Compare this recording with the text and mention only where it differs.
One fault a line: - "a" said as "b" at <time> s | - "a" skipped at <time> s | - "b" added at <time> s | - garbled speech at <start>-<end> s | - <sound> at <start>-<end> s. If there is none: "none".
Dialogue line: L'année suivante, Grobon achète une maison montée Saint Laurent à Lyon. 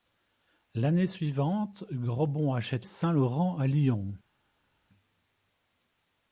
- "une maison montée" skipped at 2.9 s